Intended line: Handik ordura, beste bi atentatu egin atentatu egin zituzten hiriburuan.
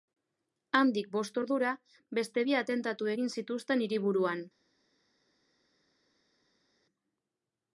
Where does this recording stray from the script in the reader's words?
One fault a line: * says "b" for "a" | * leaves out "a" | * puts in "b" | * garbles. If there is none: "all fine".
* puts in "bost"
* leaves out "atentatu egin"